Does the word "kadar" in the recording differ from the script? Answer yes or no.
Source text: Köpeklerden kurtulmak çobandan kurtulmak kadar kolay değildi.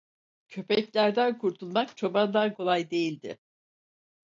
yes